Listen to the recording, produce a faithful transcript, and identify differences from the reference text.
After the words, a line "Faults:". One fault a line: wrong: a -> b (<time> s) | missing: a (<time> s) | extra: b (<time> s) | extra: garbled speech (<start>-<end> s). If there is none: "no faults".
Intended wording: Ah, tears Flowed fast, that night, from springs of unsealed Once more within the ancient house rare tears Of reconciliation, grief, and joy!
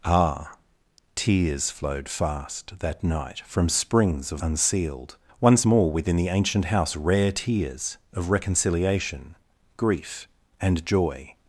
Ah, tears Flowed fast, that night, from springs of unsealed Once more within the ancient house rare tears Of reconciliation, grief, and joy!
Faults:
no faults